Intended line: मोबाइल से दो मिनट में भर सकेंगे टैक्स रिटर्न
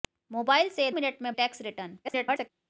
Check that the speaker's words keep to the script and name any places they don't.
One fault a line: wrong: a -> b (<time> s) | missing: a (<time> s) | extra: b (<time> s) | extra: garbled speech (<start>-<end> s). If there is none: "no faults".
missing: दो (0.9 s)
missing: भर सकेंगे (1.3 s)
extra: garbled speech (2.0-2.5 s)